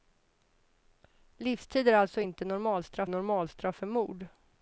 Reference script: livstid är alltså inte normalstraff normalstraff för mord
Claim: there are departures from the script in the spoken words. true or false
false